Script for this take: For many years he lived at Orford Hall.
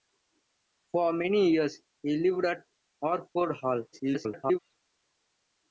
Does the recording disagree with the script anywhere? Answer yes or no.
yes